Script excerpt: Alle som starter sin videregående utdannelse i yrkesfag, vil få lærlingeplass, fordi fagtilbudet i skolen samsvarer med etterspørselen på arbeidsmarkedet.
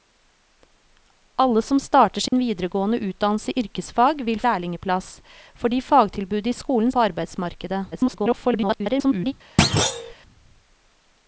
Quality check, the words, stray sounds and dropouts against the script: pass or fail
fail